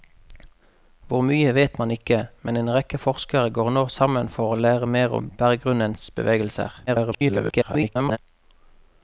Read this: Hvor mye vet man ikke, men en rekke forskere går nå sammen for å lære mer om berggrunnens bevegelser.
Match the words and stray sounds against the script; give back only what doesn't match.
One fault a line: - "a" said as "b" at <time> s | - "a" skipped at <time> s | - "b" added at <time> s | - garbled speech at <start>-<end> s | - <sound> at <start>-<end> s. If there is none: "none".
- garbled speech at 6.9-8.2 s